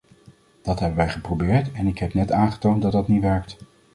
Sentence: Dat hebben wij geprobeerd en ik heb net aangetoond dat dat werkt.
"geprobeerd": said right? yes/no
yes